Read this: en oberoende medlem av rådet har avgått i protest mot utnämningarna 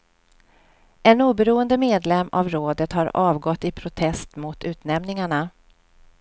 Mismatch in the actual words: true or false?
false